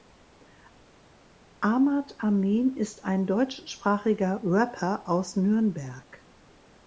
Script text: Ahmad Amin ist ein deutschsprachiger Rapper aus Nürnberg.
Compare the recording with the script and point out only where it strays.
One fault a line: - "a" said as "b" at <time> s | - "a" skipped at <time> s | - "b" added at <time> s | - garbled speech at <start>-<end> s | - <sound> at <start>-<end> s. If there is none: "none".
none